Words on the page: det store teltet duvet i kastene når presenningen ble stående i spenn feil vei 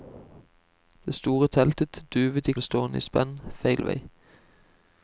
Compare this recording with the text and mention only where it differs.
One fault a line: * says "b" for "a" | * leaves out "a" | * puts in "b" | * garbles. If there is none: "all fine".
* leaves out "kastene når presenningen"